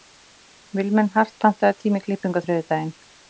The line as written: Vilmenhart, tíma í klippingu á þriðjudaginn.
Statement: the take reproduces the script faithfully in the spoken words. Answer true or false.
false